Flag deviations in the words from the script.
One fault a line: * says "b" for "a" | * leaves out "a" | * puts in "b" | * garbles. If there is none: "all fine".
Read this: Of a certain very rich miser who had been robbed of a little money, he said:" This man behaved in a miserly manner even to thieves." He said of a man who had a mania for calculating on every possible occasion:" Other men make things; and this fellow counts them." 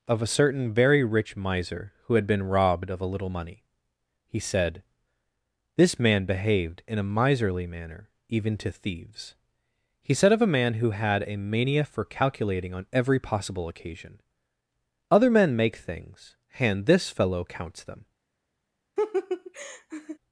all fine